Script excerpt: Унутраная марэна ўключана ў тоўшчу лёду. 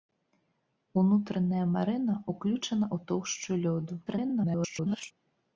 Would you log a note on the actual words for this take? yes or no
yes